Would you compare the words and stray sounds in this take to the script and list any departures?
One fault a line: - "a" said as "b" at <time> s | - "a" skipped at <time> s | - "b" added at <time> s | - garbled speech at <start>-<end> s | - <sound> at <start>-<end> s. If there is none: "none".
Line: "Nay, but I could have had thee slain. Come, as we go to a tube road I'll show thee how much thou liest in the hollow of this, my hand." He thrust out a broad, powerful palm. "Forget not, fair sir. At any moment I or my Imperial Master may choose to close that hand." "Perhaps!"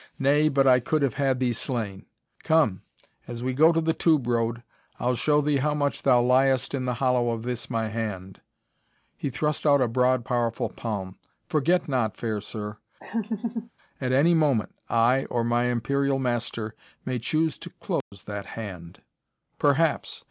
- "a" said as "the" at 3.8 s
- laugh at 13.0-13.7 s
- dropout at 18.0-18.1 s